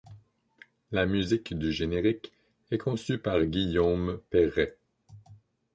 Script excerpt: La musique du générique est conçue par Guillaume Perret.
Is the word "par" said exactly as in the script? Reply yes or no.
yes